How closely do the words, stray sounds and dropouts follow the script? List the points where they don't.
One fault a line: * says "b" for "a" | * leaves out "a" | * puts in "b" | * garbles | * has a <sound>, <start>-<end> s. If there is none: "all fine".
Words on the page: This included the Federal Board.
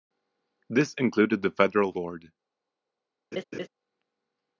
* has a laugh, 3.3-3.7 s